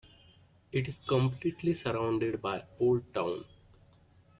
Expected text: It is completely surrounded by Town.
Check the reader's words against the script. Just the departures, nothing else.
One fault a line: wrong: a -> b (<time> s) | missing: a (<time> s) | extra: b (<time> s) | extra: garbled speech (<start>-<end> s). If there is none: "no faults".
extra: Old (2.8 s)